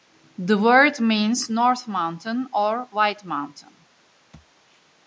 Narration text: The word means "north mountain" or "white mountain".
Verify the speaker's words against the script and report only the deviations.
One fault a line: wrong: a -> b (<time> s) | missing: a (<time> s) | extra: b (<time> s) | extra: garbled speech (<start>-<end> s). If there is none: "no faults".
no faults